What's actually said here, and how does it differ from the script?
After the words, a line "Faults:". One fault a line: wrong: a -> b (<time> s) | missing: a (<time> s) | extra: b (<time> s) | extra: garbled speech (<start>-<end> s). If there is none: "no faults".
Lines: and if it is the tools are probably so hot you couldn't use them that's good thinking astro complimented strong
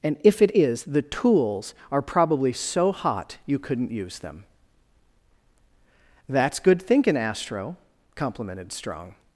and if it is the tools are probably so hot you couldn't use them that's good thinking astro complimented strong
Faults:
no faults